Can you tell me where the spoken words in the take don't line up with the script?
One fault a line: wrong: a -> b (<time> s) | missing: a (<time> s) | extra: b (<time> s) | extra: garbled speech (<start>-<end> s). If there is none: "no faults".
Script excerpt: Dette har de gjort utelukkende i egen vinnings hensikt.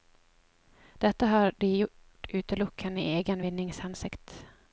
no faults